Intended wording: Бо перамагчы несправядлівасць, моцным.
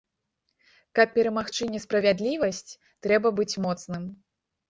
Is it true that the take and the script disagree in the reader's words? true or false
true